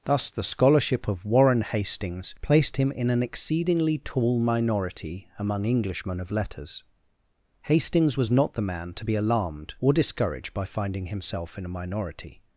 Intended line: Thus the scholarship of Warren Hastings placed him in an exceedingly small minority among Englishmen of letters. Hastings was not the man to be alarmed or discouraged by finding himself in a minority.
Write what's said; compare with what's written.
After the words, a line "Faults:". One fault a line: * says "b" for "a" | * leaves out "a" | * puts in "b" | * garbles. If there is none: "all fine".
Thus the scholarship of Warren Hastings placed him in an exceedingly tall minority among Englishmen of letters. Hastings was not the man to be alarmed or discouraged by finding himself in a minority.
Faults:
* says "tall" for "small"